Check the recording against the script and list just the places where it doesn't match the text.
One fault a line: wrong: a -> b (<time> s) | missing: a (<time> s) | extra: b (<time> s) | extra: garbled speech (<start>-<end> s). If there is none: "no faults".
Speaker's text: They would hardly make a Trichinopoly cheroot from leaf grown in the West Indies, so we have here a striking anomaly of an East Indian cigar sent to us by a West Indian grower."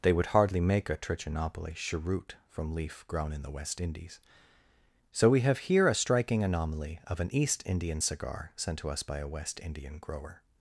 no faults